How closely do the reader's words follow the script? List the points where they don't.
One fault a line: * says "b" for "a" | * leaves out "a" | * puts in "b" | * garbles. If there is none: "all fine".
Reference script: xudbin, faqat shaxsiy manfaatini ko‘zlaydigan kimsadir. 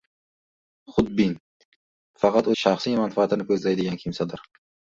all fine